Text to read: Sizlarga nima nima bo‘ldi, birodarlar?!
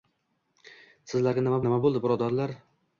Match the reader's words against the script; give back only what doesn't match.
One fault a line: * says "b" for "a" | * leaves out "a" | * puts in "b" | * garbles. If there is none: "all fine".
all fine